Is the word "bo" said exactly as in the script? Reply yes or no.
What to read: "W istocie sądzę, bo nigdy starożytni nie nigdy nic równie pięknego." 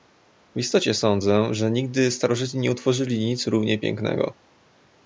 no